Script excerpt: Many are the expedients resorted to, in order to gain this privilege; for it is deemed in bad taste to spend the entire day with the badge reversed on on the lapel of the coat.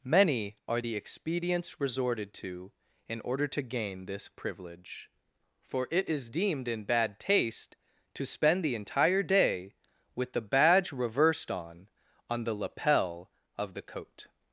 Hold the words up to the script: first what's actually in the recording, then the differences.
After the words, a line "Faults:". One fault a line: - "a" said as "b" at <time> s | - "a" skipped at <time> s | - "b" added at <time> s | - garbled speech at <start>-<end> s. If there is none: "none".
Many are the expedients resorted to, in order to gain this privilege; for it is deemed in bad taste to spend the entire day with the badge reversed on on the lapel of the coat.
Faults:
none